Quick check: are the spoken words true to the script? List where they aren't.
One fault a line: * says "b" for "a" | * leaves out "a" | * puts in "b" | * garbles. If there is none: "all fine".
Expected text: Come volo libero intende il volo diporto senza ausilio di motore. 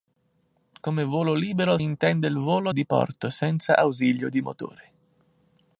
all fine